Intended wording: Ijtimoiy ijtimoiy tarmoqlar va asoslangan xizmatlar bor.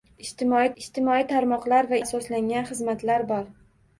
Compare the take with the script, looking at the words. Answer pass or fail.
pass